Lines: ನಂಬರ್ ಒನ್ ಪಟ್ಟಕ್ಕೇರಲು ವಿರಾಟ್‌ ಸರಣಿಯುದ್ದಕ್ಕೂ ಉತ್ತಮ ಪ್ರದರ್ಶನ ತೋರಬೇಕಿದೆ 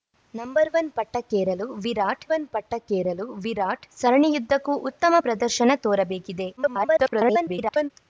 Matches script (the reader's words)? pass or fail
fail